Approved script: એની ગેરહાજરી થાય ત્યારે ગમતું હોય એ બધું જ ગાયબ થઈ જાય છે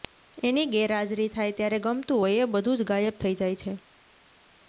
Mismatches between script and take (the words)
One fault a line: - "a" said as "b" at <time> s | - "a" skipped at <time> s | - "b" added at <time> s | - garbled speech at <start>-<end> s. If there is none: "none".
none